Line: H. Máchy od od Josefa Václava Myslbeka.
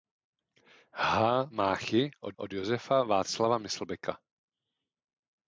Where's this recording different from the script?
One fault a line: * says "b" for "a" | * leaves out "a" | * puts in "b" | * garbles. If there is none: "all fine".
all fine